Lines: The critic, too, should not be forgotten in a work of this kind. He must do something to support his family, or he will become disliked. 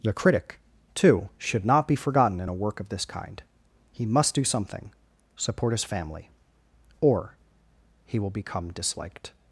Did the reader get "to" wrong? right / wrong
wrong